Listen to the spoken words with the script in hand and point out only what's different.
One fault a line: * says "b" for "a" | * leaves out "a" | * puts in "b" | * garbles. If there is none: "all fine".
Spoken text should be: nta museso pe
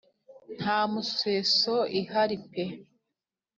* puts in "ihari"